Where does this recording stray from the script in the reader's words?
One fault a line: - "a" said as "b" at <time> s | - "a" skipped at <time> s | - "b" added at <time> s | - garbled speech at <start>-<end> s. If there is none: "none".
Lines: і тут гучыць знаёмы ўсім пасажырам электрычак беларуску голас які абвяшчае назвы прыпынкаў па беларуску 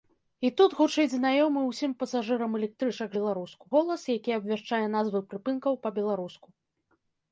none